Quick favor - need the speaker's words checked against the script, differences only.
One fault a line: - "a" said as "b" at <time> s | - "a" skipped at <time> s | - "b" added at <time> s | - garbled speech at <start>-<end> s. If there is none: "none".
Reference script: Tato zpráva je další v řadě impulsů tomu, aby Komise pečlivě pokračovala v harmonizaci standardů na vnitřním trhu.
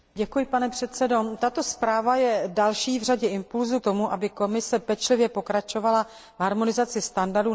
none